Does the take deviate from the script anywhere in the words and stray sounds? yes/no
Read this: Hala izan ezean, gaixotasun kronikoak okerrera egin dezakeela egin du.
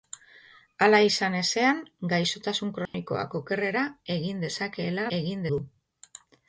yes